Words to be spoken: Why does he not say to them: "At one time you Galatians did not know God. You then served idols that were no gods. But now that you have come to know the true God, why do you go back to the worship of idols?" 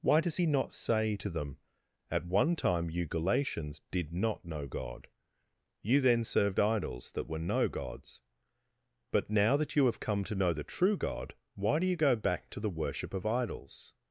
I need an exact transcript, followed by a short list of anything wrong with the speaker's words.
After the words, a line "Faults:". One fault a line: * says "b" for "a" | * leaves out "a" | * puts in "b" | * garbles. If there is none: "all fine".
Why does he not say to them: "At one time you Galatians did not know God. You then served idols that were no gods. But now that you have come to know the true God, why do you go back to the worship of idols?"
Faults:
all fine